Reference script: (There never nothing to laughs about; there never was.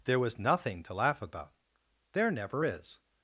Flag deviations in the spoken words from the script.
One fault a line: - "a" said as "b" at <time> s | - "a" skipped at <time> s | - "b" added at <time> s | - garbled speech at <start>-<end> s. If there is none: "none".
- "never" said as "was" at 0.2 s
- "laughs" said as "laugh" at 0.9 s
- "was" said as "is" at 2.6 s